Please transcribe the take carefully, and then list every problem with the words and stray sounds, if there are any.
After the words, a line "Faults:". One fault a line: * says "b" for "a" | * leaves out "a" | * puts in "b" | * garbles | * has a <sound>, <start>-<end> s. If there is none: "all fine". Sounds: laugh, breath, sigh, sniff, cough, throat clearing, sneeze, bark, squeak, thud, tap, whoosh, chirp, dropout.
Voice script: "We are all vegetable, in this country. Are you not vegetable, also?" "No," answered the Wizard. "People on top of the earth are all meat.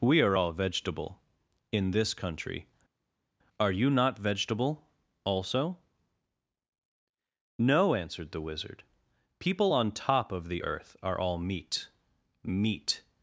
"We are all vegetable, in this country. Are you not vegetable, also?" "No," answered the Wizard. "People on top of the earth are all meat meat.
Faults:
* puts in "meat"